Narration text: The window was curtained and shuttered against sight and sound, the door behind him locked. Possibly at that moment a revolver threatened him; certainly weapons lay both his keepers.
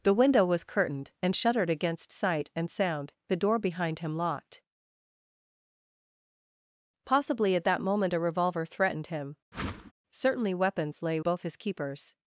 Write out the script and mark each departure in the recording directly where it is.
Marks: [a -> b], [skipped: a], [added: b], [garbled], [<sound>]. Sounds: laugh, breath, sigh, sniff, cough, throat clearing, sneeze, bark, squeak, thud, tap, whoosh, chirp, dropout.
The window was curtained and shuttered against sight and sound, the door behind him locked. Possibly at that moment a revolver threatened him; [whoosh] certainly weapons lay both his keepers.